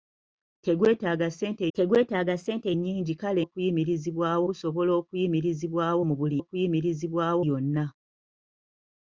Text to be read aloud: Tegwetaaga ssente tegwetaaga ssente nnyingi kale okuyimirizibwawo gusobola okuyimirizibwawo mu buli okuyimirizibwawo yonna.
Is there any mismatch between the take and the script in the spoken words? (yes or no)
no